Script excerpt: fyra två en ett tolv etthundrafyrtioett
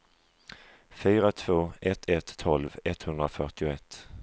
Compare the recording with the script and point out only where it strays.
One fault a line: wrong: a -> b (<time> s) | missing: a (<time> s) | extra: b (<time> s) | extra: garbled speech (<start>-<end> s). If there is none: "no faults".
wrong: en -> ett (1.8 s)